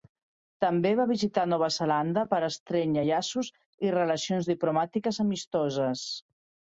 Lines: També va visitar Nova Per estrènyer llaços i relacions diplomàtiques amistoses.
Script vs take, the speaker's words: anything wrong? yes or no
yes